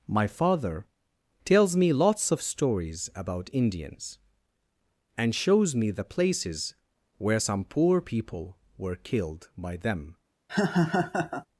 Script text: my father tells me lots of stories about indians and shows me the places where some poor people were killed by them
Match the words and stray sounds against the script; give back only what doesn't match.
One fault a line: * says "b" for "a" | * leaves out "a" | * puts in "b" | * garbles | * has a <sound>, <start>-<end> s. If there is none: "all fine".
* has a laugh, 10.5-11.5 s